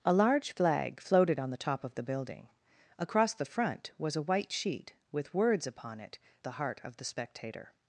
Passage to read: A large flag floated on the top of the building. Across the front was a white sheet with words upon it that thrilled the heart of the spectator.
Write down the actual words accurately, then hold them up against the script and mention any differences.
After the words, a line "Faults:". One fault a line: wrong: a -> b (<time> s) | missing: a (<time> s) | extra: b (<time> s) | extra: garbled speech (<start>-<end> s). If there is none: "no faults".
A large flag floated on the top of the building. Across the front was a white sheet with words upon it the heart of the spectator.
Faults:
missing: that thrilled (6.2 s)